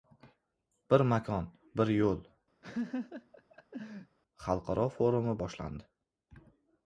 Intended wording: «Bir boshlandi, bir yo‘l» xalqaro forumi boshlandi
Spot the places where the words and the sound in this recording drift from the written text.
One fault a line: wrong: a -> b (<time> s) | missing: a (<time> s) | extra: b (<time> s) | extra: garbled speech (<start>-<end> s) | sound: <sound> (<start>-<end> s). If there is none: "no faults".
wrong: boshlandi -> makon (1.1 s)
sound: laugh (2.6-4.2 s)